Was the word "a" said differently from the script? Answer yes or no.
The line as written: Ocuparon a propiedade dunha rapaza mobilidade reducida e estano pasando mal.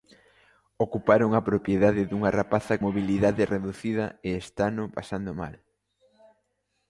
no